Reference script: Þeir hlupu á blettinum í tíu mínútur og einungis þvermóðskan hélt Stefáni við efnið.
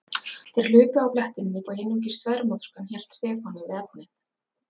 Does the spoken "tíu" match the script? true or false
false